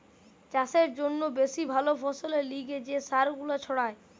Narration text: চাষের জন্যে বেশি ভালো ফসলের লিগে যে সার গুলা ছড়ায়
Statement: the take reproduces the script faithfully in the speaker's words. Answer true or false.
true